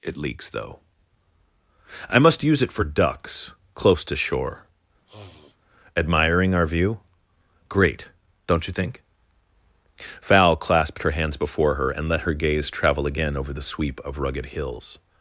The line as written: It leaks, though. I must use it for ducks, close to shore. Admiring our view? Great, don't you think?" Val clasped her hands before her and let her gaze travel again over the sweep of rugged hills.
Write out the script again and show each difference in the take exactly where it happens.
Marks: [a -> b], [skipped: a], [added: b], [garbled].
It leaks, though. I must use it for ducks, close to shore. Admiring our view? Great, don't you think?" Val clasped her hands before her and let her gaze travel again over the sweep of rugged hills.